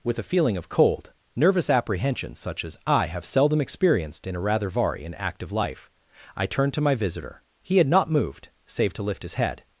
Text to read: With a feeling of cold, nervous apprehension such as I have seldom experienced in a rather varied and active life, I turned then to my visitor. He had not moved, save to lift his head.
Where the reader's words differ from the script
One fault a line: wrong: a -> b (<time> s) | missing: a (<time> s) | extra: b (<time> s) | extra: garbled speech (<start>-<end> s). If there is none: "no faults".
wrong: varied -> vari (4.7 s)
missing: then (6.7 s)